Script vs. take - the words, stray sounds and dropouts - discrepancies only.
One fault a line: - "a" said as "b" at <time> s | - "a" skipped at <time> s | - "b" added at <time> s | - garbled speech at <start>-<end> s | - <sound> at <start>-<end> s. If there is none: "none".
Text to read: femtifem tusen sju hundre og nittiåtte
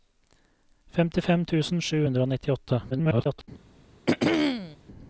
- garbled speech at 2.9-3.5 s
- throat clearing at 4.1-4.8 s